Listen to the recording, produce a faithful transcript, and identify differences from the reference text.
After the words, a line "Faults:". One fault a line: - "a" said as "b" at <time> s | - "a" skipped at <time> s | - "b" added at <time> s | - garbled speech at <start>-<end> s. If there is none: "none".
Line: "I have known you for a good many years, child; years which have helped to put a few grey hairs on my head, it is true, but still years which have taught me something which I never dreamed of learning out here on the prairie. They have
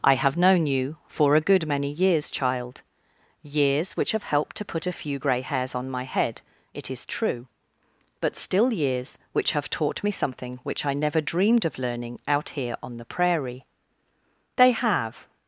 "I have known you for a good many years, child; years which have helped to put a few grey hairs on my head, it is true, but still years which have taught me something which I never dreamed of learning out here on the prairie. They have
Faults:
none